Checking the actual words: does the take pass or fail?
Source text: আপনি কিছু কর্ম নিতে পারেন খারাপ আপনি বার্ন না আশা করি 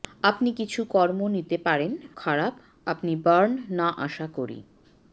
pass